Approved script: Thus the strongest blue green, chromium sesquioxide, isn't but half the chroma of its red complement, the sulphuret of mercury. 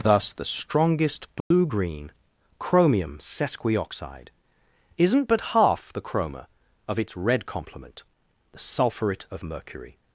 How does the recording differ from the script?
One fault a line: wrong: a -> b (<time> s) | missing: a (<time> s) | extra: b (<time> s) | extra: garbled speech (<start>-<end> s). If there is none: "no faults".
no faults